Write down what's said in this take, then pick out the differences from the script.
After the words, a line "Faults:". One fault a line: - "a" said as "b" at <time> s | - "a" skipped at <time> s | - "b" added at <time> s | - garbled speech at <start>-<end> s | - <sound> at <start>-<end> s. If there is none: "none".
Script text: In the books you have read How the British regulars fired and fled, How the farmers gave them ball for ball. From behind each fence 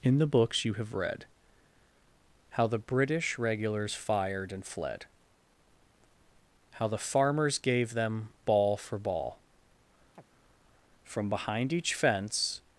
In the books you have read How the British regulars fired and fled, How the farmers gave them ball for ball. From behind each fence
Faults:
- chirp at 10.1-10.2 s